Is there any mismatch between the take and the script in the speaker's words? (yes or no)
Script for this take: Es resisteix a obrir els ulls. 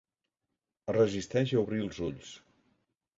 no